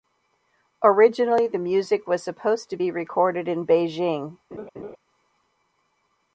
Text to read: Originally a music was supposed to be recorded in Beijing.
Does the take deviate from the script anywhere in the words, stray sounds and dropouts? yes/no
yes